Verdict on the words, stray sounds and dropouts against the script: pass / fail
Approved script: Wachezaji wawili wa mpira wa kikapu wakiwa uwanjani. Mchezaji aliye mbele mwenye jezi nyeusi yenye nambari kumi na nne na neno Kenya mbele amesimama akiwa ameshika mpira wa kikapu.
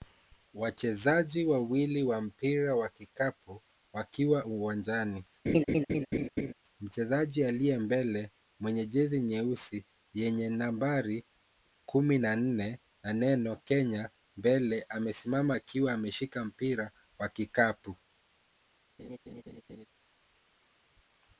fail